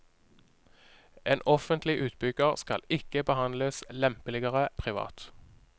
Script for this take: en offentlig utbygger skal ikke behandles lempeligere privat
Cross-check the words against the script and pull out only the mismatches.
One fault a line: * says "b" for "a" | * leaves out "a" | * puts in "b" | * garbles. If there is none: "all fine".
all fine